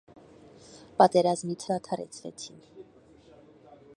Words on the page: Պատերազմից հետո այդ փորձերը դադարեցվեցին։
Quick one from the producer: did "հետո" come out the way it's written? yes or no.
no